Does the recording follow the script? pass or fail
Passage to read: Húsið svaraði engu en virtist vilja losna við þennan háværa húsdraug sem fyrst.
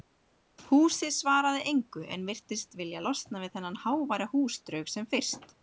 pass